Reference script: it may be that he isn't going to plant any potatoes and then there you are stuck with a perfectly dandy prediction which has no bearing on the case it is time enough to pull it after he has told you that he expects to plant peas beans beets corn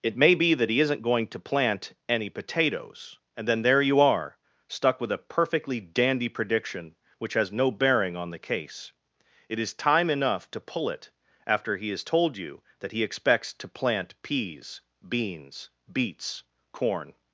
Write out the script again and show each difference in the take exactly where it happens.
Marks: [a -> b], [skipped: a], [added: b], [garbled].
it may be that he isn't going to plant any potatoes and then there you are stuck with a perfectly dandy prediction which has no bearing on the case it is time enough to pull it after he has told you that he expects to plant peas beans beets corn